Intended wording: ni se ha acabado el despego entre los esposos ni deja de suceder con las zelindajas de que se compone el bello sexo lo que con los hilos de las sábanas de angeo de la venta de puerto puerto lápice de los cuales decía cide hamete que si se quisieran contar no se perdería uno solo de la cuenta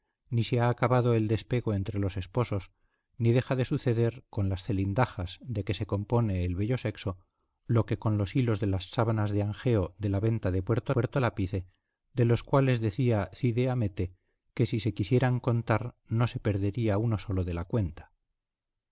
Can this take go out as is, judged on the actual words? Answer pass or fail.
pass